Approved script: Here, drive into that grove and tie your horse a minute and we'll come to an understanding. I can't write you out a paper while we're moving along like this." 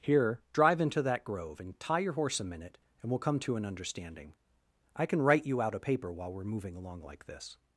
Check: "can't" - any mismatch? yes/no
yes